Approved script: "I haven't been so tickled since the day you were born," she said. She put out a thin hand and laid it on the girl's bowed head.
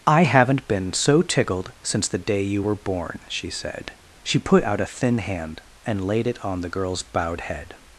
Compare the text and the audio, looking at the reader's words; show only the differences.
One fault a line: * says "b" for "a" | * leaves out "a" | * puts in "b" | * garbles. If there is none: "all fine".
all fine